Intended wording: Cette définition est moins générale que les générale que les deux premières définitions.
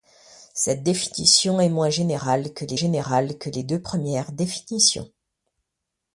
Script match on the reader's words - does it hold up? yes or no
yes